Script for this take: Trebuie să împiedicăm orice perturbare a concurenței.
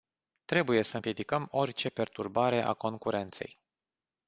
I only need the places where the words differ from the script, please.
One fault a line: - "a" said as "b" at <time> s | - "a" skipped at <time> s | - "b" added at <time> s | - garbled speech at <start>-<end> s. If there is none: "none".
none